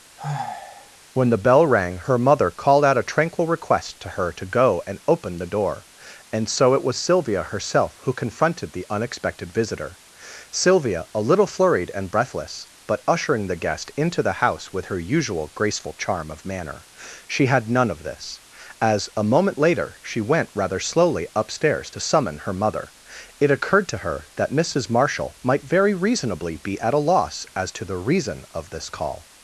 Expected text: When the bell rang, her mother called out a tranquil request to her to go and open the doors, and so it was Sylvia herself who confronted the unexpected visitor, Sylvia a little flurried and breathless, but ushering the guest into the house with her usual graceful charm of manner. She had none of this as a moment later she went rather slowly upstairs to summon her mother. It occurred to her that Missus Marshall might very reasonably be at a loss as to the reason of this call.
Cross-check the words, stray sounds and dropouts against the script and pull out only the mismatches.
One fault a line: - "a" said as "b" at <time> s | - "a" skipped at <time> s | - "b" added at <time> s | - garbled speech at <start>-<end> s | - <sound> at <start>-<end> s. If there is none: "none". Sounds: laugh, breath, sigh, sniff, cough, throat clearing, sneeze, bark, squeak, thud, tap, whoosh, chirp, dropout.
- sigh at 0.2-1.0 s
- "doors" said as "door" at 5.4 s